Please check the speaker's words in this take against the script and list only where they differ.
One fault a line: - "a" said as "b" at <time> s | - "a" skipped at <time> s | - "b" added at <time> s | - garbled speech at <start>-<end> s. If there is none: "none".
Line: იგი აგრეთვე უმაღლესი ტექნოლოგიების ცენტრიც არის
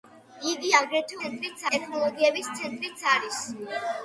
- "უმაღლესი" said as "ცენტრიც" at 1.2 s